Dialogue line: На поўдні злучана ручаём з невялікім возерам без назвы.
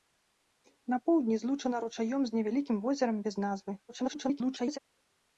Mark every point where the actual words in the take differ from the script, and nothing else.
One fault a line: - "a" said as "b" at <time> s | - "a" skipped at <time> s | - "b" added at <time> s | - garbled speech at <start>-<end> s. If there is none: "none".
- garbled speech at 3.9-4.8 s